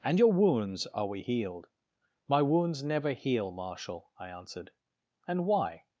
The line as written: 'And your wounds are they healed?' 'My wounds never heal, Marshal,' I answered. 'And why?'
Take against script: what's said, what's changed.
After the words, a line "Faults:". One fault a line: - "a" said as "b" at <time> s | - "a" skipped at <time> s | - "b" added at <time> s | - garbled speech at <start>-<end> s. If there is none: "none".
'And your wounds are we healed?' 'My wounds never heal, Marshal,' I answered. 'And why?'
Faults:
- "they" said as "we" at 1.1 s